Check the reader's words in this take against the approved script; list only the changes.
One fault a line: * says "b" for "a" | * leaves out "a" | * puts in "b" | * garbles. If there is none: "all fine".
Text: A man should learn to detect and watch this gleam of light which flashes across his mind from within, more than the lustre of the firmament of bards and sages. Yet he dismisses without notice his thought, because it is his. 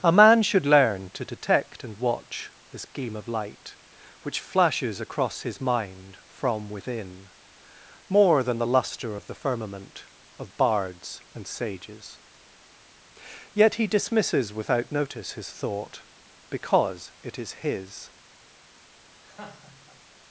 all fine